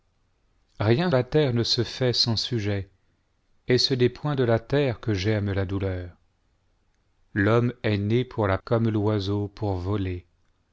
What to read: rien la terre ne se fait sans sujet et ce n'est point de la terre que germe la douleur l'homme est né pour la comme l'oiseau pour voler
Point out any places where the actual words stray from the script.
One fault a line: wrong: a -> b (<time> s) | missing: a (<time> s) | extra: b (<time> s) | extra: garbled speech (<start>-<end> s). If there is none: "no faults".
no faults